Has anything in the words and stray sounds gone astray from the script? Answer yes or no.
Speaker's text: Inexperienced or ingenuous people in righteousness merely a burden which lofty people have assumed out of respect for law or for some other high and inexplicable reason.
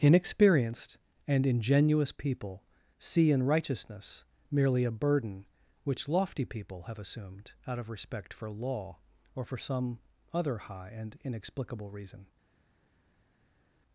yes